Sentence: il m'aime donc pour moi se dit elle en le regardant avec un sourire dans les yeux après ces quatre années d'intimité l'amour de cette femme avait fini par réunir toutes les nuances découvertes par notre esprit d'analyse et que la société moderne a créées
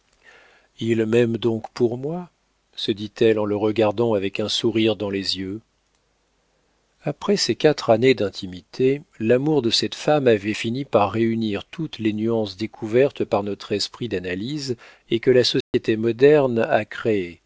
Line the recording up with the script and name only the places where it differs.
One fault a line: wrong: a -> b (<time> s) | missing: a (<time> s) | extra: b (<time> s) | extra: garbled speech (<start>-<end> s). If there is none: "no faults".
no faults